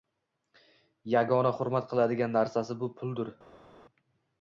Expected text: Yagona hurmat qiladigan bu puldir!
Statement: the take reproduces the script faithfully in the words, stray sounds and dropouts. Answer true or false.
false